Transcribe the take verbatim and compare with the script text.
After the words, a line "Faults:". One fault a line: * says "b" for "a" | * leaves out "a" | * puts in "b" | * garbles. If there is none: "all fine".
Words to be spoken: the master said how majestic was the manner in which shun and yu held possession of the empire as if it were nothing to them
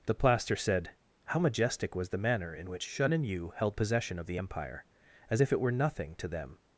the plaster said how majestic was the manner in which shun and yu held possession of the empire as if it were nothing to them
Faults:
* says "plaster" for "master"